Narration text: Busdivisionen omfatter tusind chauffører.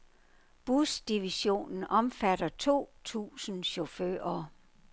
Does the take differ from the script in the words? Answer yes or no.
yes